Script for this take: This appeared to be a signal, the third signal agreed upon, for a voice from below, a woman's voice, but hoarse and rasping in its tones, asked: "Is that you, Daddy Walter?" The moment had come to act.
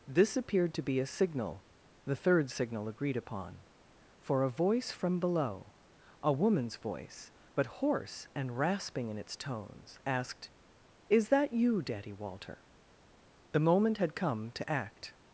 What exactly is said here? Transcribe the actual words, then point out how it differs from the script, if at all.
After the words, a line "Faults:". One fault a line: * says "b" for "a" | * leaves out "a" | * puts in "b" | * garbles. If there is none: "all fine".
This appeared to be a signal, the third signal agreed upon, for a voice from below, a woman's voice, but hoarse and rasping in its tones, asked: "Is that you, Daddy Walter?" The moment had come to act.
Faults:
all fine